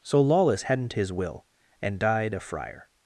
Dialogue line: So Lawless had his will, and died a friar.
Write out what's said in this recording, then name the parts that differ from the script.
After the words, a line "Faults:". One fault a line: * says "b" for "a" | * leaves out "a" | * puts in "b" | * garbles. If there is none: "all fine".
So Lawless hadn't his will, and died a friar.
Faults:
* says "hadn't" for "had"